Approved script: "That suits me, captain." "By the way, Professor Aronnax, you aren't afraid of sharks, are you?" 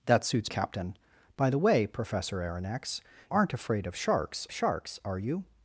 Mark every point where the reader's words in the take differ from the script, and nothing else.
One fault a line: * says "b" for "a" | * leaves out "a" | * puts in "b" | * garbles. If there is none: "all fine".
* leaves out "me"
* leaves out "you"
* puts in "sharks"